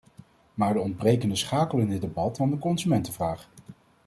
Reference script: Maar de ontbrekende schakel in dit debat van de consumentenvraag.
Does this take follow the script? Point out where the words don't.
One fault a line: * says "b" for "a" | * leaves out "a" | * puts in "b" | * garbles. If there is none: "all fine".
all fine